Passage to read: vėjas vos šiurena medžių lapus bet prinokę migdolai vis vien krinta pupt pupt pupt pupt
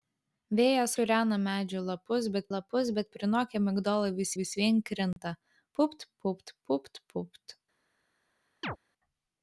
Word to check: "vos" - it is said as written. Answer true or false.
false